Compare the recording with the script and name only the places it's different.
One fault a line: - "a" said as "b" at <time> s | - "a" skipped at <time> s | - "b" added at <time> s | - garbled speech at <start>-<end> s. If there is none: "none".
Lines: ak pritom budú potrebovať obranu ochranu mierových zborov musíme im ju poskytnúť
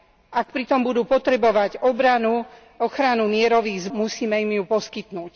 - "zborov" skipped at 3.9 s